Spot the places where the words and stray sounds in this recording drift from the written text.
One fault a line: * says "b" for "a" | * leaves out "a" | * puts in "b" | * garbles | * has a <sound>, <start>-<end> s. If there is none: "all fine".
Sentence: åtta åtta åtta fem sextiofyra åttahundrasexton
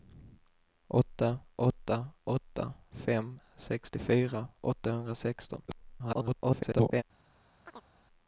* garbles
* has a chirp, 7.7-7.9 s